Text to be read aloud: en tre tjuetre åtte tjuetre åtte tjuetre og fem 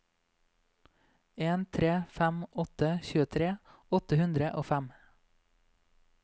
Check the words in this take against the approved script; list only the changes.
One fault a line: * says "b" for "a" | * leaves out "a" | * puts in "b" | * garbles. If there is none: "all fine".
* says "fem" for "tjuetre"
* says "hundre" for "tjuetre"